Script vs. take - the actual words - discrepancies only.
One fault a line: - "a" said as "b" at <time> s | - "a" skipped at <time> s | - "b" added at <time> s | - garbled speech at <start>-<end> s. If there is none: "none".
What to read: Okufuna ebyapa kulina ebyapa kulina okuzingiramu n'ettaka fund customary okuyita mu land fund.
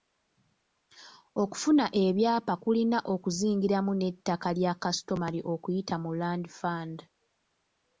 - "ebyapa kulina" skipped at 3.0 s
- "fund" said as "lya" at 4.6 s